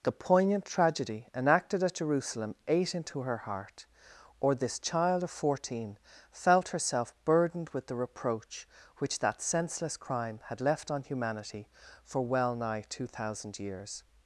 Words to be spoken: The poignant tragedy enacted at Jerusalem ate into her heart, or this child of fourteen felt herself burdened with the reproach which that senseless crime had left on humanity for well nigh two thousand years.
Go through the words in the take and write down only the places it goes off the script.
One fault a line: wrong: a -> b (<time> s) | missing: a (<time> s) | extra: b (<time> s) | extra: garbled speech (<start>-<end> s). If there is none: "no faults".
no faults